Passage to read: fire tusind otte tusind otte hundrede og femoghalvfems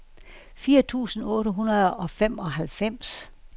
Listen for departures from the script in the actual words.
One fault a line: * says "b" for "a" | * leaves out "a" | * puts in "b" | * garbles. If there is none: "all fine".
* leaves out "tusind otte"